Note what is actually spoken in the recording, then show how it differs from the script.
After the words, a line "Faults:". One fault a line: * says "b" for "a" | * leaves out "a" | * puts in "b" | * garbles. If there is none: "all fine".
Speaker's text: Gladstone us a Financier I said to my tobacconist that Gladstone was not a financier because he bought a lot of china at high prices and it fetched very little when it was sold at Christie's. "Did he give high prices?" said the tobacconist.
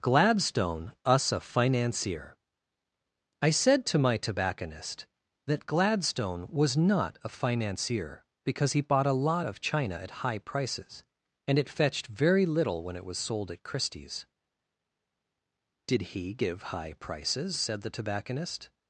Gladstone us a Financier I said to my tobacconist that Gladstone was not a financier because he bought a lot of china at high prices and it fetched very little when it was sold at Christie's. "Did he give high prices?" said the tobacconist.
Faults:
all fine